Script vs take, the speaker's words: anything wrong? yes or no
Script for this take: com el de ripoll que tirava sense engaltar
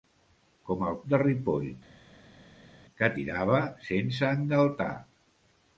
no